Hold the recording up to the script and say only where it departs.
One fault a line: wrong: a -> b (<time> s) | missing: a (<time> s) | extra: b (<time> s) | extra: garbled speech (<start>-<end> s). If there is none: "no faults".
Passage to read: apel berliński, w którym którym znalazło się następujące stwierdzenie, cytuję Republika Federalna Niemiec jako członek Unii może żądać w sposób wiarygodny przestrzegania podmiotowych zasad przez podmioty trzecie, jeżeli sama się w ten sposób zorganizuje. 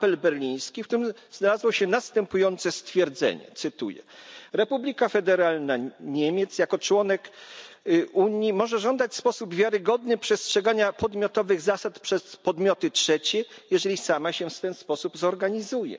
missing: którym (1.1 s)